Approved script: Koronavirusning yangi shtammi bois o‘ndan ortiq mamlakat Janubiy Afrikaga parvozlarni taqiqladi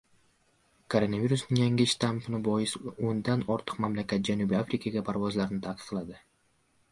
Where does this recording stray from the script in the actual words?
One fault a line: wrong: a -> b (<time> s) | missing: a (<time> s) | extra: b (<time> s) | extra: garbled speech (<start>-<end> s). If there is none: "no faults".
no faults